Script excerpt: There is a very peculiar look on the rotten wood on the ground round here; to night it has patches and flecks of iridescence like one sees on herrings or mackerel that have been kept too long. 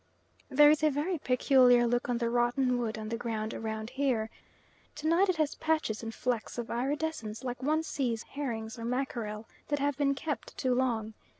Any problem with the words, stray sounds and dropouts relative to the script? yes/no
yes